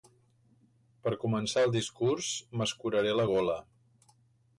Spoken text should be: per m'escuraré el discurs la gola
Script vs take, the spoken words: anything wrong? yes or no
yes